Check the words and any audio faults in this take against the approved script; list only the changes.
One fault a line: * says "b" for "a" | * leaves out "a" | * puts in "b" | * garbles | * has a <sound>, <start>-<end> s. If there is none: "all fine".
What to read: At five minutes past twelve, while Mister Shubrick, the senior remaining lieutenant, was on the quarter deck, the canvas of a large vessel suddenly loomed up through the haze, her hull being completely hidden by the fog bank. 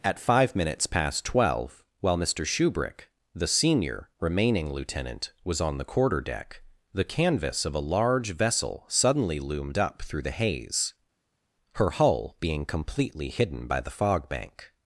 all fine